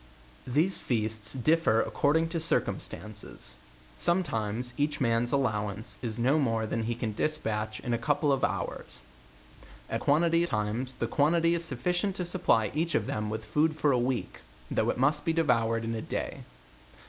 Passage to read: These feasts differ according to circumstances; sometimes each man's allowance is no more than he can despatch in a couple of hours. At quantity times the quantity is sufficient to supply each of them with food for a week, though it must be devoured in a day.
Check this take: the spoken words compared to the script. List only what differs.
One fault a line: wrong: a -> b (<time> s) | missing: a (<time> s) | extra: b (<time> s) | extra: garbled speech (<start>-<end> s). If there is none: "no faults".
no faults